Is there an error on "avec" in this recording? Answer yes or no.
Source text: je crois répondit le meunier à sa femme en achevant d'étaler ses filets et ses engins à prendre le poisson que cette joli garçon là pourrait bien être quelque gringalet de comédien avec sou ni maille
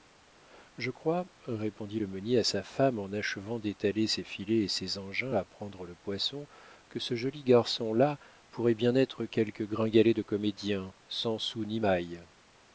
yes